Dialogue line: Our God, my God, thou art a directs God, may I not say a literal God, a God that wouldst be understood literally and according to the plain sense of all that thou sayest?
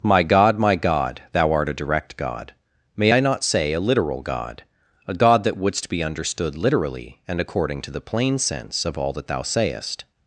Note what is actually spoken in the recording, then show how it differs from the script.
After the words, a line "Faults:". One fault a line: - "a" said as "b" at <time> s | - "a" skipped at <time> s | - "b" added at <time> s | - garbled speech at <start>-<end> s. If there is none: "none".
My God, my God, thou art a direct God, may I not say a literal God, a God that wouldst be understood literally and according to the plain sense of all that thou sayest?
Faults:
- "Our" said as "My" at 0.0 s
- "directs" said as "direct" at 1.8 s